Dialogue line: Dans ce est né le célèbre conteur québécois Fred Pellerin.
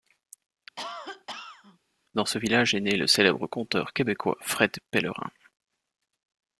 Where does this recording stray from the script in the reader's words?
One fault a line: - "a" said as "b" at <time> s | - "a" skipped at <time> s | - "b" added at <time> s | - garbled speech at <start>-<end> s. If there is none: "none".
- "village" added at 2.4 s